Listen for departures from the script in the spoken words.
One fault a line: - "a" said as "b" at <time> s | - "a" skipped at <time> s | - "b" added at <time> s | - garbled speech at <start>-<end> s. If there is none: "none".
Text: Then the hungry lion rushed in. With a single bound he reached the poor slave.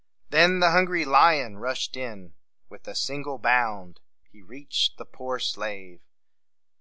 none